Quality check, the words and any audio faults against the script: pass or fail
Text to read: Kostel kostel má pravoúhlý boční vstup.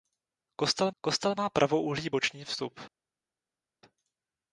pass